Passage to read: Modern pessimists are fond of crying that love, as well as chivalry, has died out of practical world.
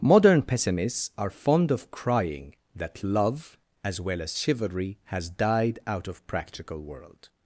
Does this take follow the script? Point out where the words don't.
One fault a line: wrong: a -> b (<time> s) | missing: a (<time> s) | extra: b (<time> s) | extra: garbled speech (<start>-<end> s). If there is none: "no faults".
no faults